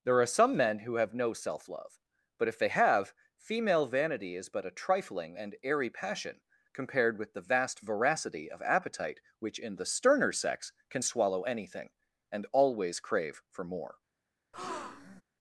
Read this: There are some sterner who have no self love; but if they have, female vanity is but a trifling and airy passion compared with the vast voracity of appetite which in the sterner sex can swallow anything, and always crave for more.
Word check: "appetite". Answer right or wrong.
right